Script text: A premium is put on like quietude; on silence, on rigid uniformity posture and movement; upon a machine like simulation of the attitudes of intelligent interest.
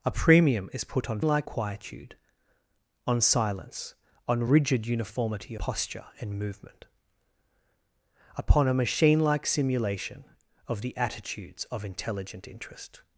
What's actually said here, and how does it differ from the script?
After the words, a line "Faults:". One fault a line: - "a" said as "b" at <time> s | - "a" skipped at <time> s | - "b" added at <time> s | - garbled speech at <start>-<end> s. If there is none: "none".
A premium is put on like quietude; on silence, on rigid uniformity posture and movement; upon a machine like simulation of the attitudes of intelligent interest.
Faults:
none